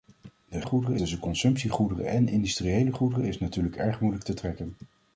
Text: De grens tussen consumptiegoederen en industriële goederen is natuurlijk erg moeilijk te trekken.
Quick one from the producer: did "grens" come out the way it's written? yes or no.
no